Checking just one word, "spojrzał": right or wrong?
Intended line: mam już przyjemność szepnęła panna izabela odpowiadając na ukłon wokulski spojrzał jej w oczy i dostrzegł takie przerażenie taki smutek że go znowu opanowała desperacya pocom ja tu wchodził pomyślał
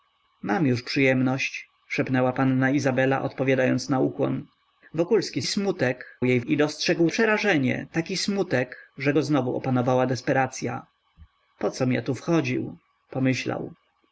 wrong